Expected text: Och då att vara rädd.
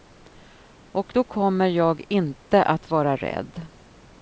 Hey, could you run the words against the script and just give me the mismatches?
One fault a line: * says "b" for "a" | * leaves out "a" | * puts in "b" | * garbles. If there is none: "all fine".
* puts in "kommer jag inte"